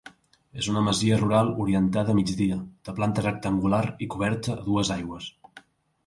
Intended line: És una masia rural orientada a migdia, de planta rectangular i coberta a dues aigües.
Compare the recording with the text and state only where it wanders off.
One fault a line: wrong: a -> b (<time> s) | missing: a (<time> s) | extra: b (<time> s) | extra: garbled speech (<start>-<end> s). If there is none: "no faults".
no faults